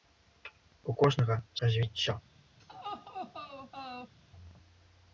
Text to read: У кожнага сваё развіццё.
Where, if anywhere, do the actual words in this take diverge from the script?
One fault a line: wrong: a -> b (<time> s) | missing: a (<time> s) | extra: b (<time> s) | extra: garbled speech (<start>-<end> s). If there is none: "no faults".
missing: сваё (1.4 s)